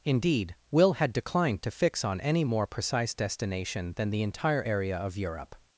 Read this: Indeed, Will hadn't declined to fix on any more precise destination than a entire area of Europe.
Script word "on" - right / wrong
right